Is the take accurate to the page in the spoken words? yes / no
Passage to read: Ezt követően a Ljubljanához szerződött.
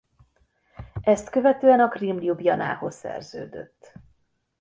no